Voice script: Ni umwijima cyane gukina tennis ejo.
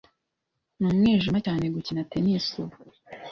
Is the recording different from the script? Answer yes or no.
yes